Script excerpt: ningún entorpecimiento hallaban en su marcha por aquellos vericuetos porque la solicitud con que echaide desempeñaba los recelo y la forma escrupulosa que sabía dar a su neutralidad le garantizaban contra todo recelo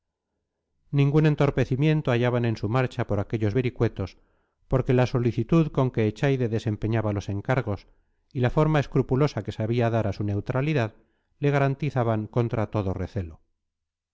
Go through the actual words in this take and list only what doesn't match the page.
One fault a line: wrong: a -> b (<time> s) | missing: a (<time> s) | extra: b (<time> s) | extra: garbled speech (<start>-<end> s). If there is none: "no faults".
wrong: recelo -> encargos (7.3 s)